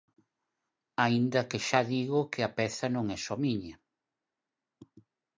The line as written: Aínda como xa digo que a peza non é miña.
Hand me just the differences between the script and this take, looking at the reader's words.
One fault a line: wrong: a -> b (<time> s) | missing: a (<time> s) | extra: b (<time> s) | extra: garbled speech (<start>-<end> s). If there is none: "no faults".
wrong: como -> que (1.5 s)
extra: só (3.2 s)